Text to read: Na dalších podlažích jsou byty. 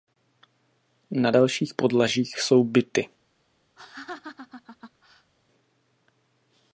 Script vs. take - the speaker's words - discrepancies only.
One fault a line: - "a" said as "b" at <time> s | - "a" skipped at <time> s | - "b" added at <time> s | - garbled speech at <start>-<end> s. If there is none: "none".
none